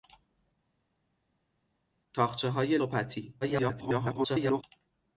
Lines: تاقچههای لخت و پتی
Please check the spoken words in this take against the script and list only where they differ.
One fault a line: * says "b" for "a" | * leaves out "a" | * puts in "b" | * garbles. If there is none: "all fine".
* leaves out "لخت"
* garbles